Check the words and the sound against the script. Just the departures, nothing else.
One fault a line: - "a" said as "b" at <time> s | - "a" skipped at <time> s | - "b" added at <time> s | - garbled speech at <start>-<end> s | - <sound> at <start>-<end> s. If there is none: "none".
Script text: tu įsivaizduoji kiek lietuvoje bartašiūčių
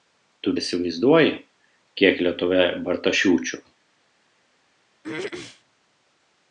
- throat clearing at 5.0-5.6 s